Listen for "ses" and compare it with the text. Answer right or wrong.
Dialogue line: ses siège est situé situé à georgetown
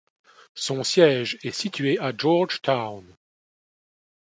wrong